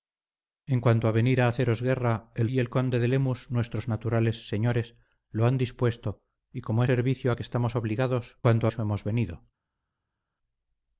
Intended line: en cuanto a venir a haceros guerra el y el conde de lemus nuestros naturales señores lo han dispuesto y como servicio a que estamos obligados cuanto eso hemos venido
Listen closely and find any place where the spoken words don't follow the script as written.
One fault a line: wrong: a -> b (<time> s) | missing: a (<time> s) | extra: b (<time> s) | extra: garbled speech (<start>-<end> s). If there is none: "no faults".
no faults